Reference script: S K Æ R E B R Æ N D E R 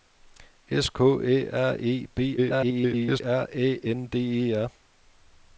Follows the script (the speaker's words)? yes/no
no